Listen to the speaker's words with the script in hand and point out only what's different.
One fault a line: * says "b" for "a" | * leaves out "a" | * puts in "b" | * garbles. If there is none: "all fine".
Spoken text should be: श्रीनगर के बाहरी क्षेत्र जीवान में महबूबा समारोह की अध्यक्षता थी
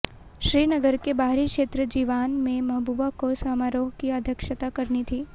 * puts in "को"
* puts in "करनी"